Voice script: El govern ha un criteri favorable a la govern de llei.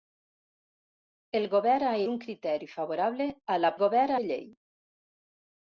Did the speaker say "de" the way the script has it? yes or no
yes